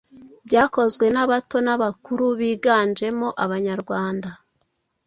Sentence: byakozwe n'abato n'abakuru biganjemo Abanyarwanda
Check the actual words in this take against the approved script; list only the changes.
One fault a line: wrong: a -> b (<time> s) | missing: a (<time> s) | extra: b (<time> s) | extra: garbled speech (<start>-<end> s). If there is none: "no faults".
no faults